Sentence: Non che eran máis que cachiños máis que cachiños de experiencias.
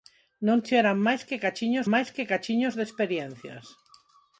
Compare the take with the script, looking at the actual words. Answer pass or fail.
pass